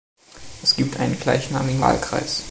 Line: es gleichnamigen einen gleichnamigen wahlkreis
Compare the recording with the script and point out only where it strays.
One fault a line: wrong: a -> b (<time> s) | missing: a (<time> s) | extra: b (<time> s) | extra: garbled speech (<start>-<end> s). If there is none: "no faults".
wrong: gleichnamigen -> gibt (0.8 s)